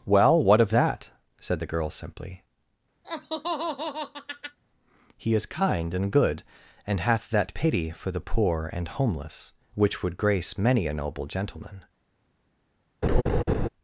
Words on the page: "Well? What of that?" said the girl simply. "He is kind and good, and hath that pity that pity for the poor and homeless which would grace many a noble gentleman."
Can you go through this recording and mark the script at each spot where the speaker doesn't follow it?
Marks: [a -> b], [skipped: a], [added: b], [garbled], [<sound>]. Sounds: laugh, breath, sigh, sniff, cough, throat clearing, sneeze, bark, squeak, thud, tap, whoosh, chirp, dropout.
"Well? What of that?" said the girl simply. [laugh] "He is kind and good, and hath that pity [skipped: that pity] for the poor and homeless which would grace many a noble gentleman." [laugh]